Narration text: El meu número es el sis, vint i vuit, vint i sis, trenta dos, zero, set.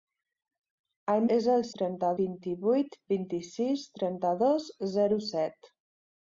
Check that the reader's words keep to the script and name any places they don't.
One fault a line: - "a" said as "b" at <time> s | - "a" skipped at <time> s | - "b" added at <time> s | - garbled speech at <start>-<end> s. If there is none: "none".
- "meu número" skipped at 1.2 s
- "sis" said as "trenta" at 1.8 s